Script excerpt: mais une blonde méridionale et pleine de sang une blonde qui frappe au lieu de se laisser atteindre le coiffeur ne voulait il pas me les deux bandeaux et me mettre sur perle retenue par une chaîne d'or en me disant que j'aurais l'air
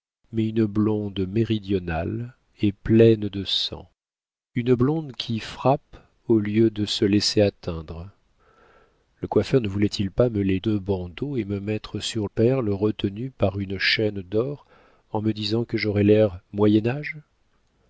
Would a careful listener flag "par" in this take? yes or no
no